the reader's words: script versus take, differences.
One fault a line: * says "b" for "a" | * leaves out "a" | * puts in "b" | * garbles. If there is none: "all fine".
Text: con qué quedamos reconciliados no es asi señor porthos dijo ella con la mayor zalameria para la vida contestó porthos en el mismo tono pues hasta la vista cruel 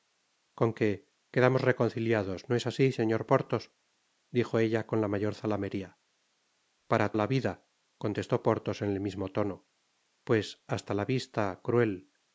all fine